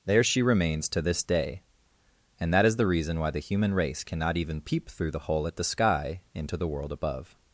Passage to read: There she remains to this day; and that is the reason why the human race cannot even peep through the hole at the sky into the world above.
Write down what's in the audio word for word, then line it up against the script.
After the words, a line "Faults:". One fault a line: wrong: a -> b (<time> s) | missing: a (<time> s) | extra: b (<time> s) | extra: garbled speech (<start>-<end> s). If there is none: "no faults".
There she remains to this day; and that is the reason why the human race cannot even peep through the hole at the sky into the world above.
Faults:
no faults